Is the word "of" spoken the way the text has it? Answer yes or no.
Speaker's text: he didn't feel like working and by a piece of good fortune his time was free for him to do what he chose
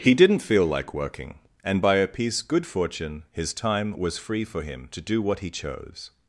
no